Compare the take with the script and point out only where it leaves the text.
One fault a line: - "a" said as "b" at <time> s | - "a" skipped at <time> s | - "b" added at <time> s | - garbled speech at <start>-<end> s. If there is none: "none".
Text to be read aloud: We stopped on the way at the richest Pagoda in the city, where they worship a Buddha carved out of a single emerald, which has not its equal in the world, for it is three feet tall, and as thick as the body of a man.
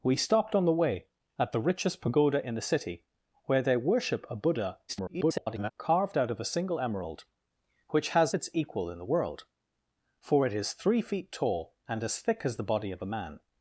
- garbled speech at 4.9-5.7 s
- "not" skipped at 8.3 s